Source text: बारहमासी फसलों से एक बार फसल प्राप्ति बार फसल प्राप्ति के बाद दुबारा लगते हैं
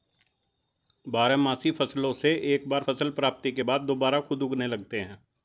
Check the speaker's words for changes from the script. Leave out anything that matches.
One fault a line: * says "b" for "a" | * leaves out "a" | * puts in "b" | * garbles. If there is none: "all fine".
* leaves out "बार फसल प्राप्ति"
* puts in "खुद उगने"